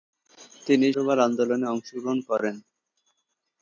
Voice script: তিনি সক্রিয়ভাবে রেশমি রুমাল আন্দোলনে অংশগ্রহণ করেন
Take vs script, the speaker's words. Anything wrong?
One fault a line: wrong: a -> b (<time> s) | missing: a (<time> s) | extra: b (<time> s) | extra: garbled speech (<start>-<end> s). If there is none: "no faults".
missing: সক্রিয়ভাবে রেশমি (0.9 s)